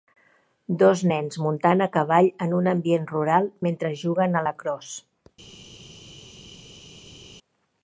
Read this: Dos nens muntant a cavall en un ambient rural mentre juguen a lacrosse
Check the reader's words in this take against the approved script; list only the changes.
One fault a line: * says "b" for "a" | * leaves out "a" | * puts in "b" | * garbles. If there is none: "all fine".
all fine